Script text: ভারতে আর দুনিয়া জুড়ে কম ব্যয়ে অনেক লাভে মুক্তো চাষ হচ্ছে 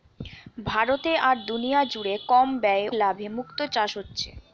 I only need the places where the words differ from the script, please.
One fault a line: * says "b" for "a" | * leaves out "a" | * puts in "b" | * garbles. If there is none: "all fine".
* leaves out "অনেক"